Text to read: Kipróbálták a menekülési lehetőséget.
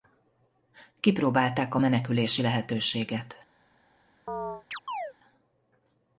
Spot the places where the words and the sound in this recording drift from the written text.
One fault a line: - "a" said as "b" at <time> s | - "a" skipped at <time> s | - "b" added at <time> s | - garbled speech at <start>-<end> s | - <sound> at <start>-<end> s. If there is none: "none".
- chirp at 4.3-5.1 s